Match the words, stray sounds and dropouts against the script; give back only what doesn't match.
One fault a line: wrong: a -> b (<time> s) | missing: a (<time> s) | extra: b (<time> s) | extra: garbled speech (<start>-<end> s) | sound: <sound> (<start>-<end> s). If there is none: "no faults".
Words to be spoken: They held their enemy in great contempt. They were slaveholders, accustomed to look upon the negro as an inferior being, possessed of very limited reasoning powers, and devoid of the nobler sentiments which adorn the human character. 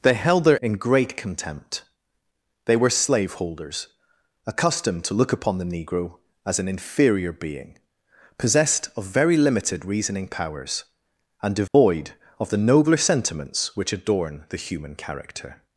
missing: enemy (0.6 s)
sound: dropout (11.7-11.7 s)